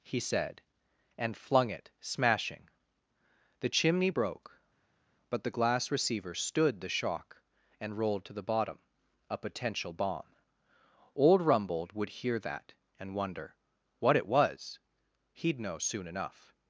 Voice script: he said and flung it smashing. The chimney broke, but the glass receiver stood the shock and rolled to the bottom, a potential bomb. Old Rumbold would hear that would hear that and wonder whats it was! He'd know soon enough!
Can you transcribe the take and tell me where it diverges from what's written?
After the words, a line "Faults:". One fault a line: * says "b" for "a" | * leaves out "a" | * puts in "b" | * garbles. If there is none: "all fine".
he said and flung it smashing. The chimney broke, but the glass receiver stood the shock and rolled to the bottom, a potential bomb. Old Rumbold would hear that and wonder what it was! He'd know soon enough!
Faults:
* leaves out "would hear that"
* says "what" for "whats"